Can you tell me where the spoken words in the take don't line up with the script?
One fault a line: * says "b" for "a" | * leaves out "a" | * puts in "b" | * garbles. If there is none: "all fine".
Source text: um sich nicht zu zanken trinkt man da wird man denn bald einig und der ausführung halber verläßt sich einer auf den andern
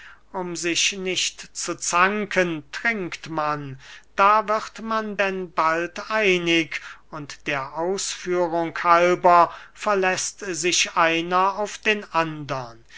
all fine